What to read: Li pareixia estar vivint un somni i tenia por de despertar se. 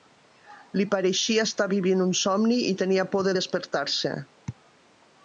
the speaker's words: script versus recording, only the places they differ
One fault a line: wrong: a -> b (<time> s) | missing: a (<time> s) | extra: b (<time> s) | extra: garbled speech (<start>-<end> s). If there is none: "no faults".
no faults